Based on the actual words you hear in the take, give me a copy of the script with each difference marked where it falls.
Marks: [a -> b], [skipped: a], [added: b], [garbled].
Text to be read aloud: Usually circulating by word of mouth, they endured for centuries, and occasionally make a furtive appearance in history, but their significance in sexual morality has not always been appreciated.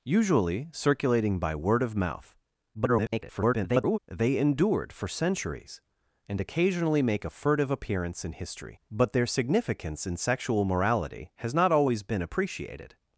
Usually circulating by word of mouth, [garbled] they endured for centuries, and occasionally make a furtive appearance in history, but their significance in sexual morality has not always been appreciated.